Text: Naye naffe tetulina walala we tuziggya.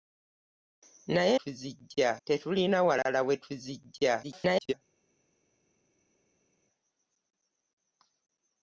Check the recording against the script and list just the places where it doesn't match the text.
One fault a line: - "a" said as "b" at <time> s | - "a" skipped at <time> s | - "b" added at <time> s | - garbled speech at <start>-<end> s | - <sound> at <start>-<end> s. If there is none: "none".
- "naffe" said as "tuziggya" at 1.4 s
- garbled speech at 4.2-4.7 s